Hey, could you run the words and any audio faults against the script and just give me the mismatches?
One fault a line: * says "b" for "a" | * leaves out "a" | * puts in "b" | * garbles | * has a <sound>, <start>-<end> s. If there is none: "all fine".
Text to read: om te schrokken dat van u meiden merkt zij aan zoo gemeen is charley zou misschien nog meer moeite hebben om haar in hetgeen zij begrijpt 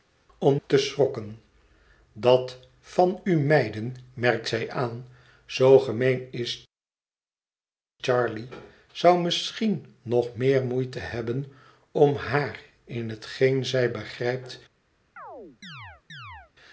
* has a chirp, 15.2-16.5 s